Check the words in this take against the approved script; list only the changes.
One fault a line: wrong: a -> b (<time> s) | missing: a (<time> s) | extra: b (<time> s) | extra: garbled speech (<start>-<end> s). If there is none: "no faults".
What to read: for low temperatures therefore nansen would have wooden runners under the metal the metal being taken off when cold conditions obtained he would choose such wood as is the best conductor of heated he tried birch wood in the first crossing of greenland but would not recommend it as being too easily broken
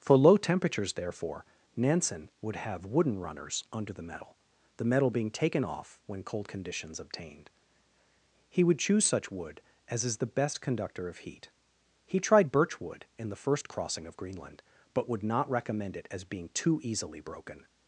wrong: heated -> heat (11.2 s)